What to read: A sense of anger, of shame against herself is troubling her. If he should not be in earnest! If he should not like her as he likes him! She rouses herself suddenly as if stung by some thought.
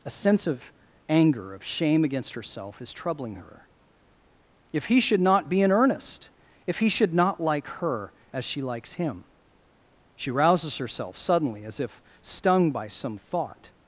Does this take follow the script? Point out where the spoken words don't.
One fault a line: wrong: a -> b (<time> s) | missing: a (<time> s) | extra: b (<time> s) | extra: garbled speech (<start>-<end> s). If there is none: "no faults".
wrong: he -> she (8.4 s)